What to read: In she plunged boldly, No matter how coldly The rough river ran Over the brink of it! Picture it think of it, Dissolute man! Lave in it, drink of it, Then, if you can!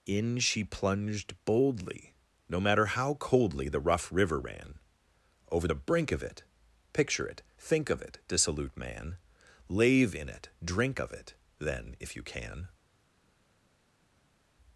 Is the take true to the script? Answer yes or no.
yes